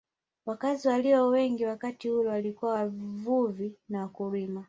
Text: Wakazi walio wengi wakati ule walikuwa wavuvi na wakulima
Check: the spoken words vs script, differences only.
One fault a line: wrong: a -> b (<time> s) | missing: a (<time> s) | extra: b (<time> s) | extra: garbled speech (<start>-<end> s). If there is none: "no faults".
no faults